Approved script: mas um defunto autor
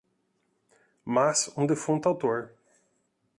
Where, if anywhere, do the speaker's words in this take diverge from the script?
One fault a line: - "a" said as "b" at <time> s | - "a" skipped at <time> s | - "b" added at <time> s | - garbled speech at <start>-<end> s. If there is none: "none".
none